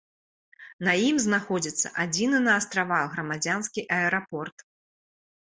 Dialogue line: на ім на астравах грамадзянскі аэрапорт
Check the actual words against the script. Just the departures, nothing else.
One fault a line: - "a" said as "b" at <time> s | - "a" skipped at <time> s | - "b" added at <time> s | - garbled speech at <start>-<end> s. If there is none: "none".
- "знаходзіцца адзіны" added at 1.2 s